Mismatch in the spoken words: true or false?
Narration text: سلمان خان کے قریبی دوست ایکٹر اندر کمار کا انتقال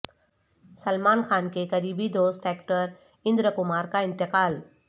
false